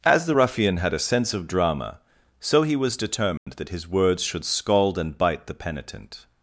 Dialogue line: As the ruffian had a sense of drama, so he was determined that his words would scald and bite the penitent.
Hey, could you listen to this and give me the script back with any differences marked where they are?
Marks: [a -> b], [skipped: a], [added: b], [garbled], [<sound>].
As the ruffian had a sense of drama, so he was determined [dropout] that his words [would -> should] scald and bite the penitent.